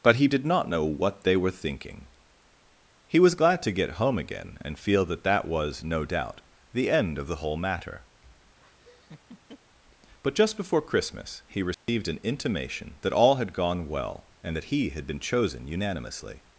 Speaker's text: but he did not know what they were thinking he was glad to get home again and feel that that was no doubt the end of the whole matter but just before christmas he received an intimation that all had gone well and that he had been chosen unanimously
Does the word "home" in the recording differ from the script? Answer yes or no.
no